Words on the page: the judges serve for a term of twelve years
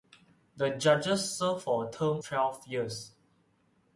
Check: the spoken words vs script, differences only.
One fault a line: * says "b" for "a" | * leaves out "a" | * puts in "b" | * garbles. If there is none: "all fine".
* leaves out "of"